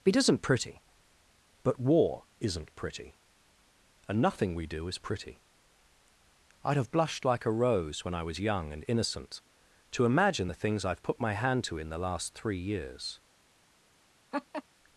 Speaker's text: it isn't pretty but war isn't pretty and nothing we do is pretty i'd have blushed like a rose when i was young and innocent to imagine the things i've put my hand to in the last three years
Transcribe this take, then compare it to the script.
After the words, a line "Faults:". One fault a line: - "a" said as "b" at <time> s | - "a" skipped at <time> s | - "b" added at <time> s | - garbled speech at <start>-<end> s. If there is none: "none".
it isn't pretty but war isn't pretty and nothing we do is pretty i'd have blushed like a rose when i was young and innocent to imagine the things i've put my hand to in the last three years
Faults:
none